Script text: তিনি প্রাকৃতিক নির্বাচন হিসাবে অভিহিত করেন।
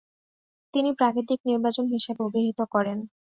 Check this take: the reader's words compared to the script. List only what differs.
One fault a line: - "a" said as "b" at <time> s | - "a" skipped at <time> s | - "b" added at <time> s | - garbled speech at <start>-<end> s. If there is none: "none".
none